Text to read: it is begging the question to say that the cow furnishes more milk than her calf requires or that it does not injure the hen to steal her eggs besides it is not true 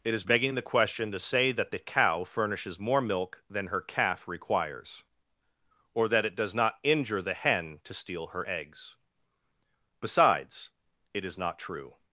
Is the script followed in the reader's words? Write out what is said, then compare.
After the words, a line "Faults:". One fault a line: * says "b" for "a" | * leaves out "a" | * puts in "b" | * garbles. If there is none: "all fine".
it is begging the question to say that the cow furnishes more milk than her calf requires or that it does not injure the hen to steal her eggs besides it is not true
Faults:
all fine